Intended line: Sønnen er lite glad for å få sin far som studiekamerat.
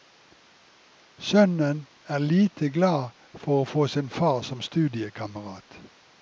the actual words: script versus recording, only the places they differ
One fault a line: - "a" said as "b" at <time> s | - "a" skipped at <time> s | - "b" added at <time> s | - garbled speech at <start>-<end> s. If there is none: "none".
none